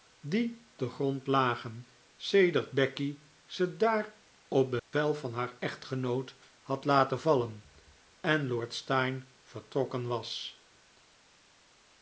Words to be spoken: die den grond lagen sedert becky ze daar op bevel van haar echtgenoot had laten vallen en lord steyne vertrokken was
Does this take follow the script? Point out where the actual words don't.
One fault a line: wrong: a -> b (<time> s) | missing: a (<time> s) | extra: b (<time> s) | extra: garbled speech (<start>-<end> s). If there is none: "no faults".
no faults